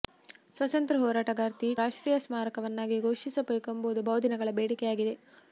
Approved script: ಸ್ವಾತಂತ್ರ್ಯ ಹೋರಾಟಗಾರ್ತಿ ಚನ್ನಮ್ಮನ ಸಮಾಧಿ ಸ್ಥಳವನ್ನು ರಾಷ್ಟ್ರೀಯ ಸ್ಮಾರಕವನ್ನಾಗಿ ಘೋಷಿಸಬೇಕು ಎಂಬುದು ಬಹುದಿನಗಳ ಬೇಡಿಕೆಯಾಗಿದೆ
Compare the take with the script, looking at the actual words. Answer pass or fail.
fail